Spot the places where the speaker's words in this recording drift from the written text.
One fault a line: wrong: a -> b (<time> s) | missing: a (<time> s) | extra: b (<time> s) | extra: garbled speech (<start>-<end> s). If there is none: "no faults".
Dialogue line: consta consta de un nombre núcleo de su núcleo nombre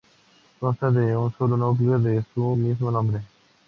missing: consta (0.9 s)
wrong: nombre -> solo (1.4 s)
wrong: núcleo -> mismo (2.6 s)